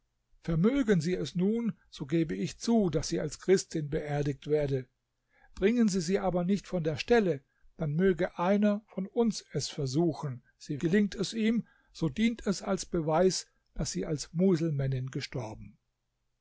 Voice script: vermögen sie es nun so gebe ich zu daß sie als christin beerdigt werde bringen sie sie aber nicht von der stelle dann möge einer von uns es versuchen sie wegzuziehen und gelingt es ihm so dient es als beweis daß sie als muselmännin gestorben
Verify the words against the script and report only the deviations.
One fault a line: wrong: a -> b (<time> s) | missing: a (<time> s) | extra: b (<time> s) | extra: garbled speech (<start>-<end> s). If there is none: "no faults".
missing: wegzuziehen und (10.8 s)